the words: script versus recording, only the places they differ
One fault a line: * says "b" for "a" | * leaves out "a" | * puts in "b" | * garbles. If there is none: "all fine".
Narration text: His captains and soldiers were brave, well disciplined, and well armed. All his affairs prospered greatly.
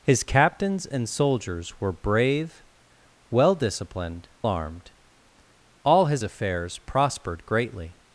* leaves out "and well"